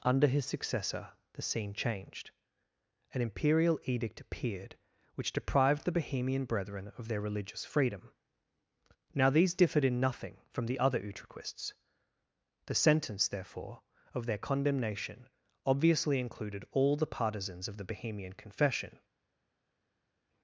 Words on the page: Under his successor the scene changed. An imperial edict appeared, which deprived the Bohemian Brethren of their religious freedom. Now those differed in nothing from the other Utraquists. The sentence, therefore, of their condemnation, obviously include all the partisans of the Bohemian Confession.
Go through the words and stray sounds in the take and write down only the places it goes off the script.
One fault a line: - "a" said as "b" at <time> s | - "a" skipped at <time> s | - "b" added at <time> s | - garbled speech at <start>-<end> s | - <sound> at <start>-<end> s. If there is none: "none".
- "those" said as "these" at 9.3 s
- "include" said as "included" at 16.2 s